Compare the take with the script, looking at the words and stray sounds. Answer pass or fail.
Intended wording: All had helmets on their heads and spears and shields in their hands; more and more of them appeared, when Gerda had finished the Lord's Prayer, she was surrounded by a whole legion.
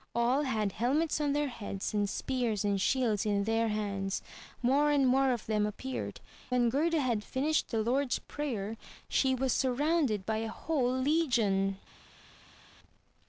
pass